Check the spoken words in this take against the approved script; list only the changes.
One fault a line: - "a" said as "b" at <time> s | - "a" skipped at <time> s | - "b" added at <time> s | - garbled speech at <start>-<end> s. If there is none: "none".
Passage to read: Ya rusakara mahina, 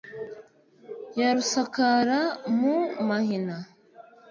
- "mu" added at 2.6 s